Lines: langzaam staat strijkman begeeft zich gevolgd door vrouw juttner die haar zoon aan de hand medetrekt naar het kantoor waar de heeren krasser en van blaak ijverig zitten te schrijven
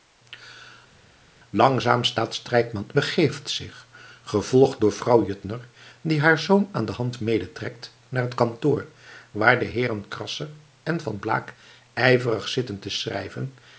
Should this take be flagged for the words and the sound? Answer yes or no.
no